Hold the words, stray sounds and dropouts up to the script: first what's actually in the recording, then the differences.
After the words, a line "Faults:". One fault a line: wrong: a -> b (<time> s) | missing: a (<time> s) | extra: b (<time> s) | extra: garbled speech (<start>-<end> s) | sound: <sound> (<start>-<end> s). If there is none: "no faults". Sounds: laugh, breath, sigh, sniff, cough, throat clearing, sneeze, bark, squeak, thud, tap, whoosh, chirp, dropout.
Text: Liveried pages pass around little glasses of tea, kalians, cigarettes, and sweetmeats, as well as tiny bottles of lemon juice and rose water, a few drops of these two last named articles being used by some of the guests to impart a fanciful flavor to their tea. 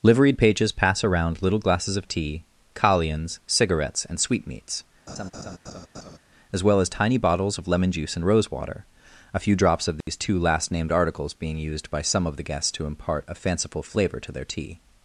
Liveried pages pass around little glasses of tea, kalians, cigarettes, and sweetmeats, as well as tiny bottles of lemon juice and rose water, a few drops of these two last named articles being used by some of the guests to impart a fanciful flavor to their tea.
Faults:
sound: laugh (5.1-6.2 s)
sound: dropout (10.0-10.1 s)